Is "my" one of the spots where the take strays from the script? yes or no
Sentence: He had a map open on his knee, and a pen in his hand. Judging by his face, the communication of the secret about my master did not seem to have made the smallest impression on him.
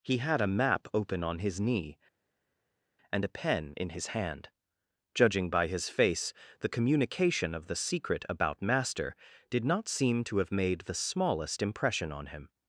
yes